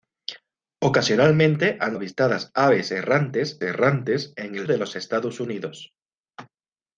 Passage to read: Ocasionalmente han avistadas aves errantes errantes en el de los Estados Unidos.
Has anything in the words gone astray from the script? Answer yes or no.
no